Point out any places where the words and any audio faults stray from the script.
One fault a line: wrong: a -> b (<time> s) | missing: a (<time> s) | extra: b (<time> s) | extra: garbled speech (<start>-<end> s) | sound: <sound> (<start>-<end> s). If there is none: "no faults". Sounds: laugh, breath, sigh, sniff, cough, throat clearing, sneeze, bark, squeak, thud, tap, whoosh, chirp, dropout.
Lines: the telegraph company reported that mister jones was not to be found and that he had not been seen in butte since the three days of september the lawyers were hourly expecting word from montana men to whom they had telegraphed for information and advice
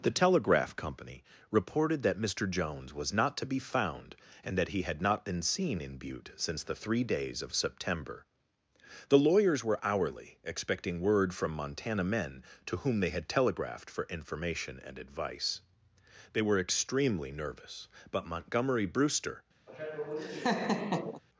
extra: they were extremely nervous but montgomery brewster (16.3 s)
sound: laugh (19.7-21.2 s)